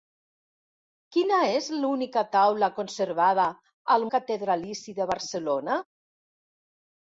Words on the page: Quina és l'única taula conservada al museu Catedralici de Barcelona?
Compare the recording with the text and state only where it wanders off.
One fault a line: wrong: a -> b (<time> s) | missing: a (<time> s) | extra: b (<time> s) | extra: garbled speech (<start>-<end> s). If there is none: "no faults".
missing: museu (4.0 s)